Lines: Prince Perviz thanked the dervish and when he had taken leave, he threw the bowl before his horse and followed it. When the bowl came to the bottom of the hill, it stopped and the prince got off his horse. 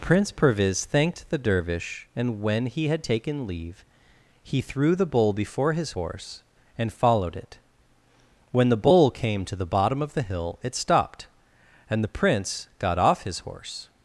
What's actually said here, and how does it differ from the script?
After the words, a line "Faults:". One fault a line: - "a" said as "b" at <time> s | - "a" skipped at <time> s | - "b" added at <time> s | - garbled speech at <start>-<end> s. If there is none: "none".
Prince Perviz thanked the dervish and when he had taken leave, he threw the bowl before his horse and followed it. When the bowl came to the bottom of the hill, it stopped and the prince got off his horse.
Faults:
none